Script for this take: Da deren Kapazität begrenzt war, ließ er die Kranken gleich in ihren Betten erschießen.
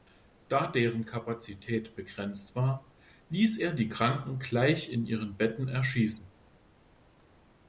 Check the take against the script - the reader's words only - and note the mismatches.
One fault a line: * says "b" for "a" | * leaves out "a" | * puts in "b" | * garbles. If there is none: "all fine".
all fine